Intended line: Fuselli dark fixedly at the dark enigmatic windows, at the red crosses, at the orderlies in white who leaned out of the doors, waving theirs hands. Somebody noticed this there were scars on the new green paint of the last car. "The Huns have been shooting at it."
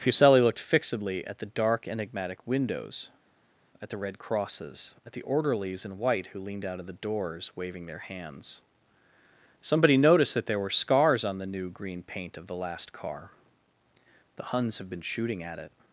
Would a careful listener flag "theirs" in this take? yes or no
yes